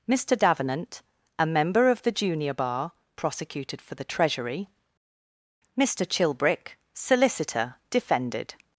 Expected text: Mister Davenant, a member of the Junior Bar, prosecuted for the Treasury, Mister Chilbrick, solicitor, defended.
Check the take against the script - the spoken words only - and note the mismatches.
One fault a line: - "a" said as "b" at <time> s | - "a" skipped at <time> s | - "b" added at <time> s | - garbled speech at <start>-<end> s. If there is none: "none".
none